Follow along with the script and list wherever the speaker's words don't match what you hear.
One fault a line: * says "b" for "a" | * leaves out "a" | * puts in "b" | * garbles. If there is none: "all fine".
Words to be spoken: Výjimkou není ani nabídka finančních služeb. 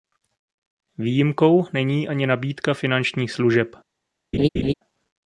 all fine